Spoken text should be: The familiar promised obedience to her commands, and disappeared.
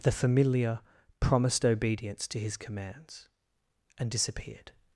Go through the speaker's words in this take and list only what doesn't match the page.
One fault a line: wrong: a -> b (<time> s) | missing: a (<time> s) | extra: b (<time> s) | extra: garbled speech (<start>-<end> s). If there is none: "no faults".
wrong: her -> his (2.4 s)